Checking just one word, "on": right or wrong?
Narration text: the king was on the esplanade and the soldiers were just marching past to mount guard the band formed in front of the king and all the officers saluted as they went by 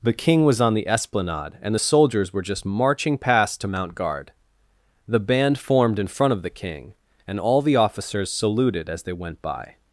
right